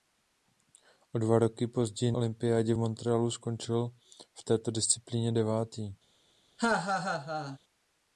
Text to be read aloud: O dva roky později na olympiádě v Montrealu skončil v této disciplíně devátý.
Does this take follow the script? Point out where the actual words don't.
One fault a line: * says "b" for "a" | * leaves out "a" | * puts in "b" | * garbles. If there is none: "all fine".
* leaves out "na"